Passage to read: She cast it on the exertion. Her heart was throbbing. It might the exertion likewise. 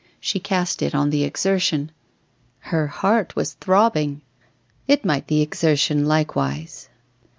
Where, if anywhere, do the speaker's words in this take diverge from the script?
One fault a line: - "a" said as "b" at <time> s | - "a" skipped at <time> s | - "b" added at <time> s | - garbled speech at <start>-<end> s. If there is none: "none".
none